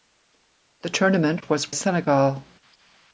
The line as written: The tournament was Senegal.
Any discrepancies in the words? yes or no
no